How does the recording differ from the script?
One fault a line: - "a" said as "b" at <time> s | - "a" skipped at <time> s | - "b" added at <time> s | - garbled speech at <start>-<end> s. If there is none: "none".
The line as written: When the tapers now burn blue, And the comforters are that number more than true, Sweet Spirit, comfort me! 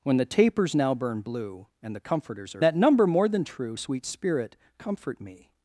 none